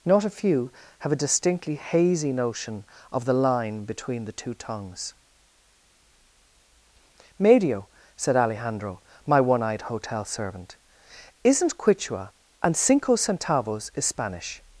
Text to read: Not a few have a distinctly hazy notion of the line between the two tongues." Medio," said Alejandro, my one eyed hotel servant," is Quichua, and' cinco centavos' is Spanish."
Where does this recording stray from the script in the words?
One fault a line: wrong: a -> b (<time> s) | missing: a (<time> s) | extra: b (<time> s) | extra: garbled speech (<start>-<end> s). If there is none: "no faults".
wrong: is -> isn't (11.4 s)